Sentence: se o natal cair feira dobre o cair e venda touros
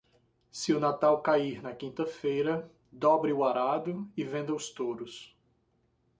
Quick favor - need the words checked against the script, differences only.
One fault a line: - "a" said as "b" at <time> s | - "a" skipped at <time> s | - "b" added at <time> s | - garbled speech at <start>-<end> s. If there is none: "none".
- "na quinta" added at 1.6 s
- "cair" said as "arado" at 3.4 s
- "os" added at 4.5 s